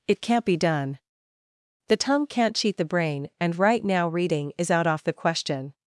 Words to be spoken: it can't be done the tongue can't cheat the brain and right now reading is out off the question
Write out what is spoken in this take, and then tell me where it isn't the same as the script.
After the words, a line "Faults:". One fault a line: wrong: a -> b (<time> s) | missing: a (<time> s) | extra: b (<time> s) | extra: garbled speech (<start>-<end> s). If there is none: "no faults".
it can't be done the tongue can't cheat the brain and right now reading is out off the question
Faults:
no faults